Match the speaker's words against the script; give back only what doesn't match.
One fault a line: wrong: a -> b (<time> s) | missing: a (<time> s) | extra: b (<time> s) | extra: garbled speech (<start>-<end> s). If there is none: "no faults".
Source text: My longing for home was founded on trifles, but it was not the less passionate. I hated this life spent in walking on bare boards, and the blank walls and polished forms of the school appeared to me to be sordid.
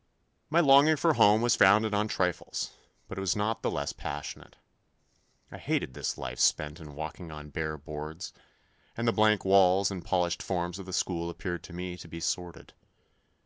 no faults